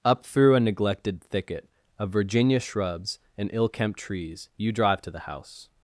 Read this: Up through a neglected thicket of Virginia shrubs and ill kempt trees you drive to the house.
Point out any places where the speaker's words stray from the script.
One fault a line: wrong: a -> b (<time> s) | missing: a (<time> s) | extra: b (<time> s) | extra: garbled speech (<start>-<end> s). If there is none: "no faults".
no faults